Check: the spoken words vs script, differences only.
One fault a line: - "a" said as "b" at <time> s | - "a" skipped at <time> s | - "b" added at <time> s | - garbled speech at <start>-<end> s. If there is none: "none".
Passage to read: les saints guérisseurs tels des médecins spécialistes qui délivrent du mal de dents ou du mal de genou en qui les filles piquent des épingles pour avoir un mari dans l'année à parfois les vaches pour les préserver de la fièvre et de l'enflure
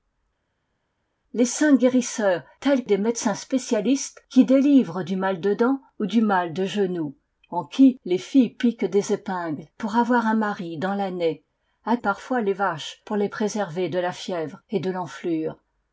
none